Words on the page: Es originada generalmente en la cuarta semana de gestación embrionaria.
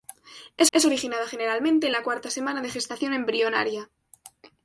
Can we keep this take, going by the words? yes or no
no